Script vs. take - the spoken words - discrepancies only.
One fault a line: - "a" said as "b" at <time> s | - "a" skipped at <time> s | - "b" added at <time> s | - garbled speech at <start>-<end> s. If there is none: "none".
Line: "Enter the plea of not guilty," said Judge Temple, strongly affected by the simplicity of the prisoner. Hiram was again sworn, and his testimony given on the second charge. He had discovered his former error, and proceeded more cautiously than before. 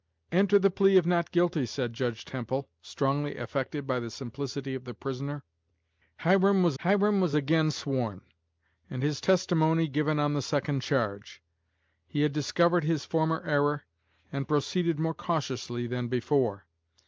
- "hiram was" added at 6.8 s